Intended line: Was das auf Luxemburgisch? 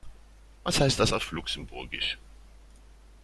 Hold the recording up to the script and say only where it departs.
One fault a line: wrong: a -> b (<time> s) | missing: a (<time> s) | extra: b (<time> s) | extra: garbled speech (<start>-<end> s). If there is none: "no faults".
extra: heißt (0.8 s)